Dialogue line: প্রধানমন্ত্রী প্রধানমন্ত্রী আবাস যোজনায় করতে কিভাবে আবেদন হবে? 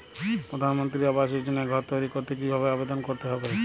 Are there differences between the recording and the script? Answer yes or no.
yes